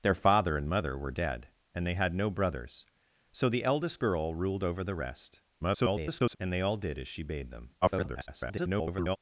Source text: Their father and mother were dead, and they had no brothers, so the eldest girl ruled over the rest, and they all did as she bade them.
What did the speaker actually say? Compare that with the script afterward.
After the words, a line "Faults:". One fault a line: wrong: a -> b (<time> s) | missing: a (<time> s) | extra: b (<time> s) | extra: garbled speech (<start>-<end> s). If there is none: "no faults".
Their father and mother were dead, and they had no brothers, so the eldest girl ruled over the rest, [garbled] and they all did as she bade them. [garbled]
Faults:
extra: garbled speech (5.6-6.4 s)
extra: garbled speech (7.8-9.2 s)